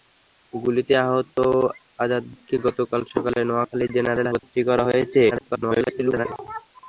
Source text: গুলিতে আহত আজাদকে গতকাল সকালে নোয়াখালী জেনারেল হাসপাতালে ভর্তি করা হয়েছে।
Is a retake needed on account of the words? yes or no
yes